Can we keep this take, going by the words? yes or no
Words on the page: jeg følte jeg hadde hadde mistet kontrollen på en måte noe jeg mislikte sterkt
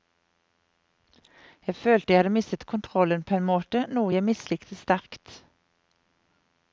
no